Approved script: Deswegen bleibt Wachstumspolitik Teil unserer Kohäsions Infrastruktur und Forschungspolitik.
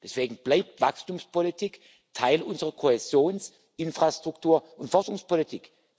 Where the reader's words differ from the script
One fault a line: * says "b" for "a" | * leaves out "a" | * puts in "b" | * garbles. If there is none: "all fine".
all fine